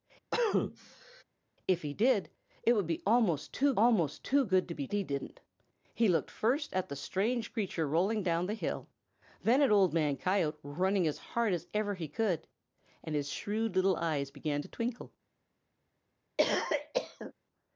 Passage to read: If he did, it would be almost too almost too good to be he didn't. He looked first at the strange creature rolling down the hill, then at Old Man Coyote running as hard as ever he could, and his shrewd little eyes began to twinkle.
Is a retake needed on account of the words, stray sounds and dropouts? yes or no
yes